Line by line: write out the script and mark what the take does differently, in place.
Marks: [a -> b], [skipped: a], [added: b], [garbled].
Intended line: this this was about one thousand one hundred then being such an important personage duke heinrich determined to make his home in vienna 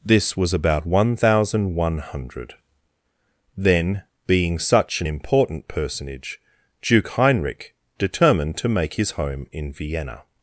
this [skipped: this] was about one thousand one hundred then being such an important personage duke heinrich determined to make his home in vienna